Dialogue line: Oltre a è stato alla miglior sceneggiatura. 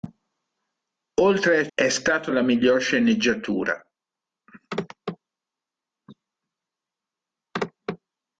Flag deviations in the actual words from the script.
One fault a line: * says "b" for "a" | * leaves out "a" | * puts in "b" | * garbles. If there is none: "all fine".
all fine